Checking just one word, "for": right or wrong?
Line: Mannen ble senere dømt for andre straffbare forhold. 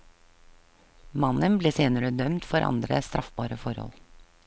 right